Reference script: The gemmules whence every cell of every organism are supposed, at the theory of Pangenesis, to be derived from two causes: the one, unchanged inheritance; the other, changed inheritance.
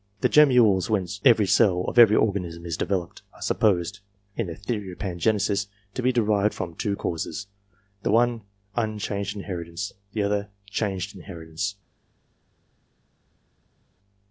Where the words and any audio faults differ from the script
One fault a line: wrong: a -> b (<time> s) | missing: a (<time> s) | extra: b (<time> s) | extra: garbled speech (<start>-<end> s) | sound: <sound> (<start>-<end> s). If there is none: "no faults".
extra: is developed (2.6 s)
wrong: at -> in (4.3 s)